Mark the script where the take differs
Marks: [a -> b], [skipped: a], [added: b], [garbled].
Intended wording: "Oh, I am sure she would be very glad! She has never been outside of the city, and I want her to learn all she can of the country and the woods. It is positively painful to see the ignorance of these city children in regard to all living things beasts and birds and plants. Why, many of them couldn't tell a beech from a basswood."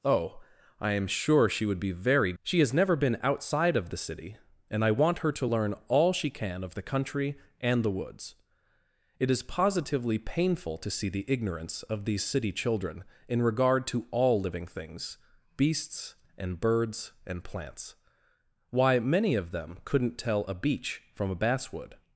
"Oh, I am sure she would be very [skipped: glad!] She has never been outside of the city, and I want her to learn all she can of the country and the woods. It is positively painful to see the ignorance of these city children in regard to all living things beasts and birds and plants. Why, many of them couldn't tell a beech from a basswood."